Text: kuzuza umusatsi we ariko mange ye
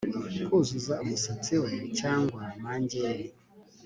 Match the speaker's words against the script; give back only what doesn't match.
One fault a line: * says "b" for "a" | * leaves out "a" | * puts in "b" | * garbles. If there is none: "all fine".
* says "cyangwa" for "ariko"